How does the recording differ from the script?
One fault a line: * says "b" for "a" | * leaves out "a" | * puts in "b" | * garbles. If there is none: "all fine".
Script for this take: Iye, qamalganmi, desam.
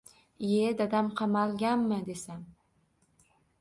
* puts in "dadam"